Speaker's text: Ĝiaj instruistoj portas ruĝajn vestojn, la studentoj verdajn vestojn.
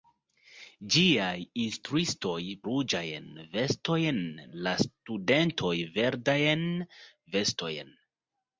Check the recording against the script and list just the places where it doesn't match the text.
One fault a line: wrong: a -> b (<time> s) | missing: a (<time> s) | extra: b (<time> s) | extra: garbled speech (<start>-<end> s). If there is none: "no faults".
missing: portas (2.4 s)